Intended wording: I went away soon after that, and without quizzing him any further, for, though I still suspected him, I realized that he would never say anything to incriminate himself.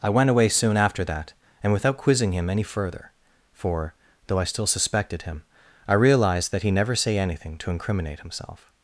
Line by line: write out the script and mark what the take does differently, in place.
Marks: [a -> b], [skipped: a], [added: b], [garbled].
I went away soon after that, and without quizzing him any further, for, though I still suspected him, I realized that he [skipped: would] never say anything to incriminate himself.